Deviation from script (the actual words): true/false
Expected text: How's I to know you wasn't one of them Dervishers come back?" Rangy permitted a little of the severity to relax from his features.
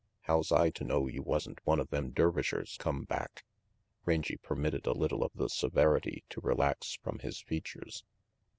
false